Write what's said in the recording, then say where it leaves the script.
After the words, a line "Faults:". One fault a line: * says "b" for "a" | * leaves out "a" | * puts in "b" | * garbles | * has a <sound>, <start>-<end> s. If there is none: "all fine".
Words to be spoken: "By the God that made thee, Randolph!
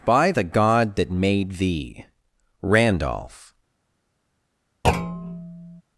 "By the God that made thee, Randolph!
Faults:
* has a thud, 4.8-5.8 s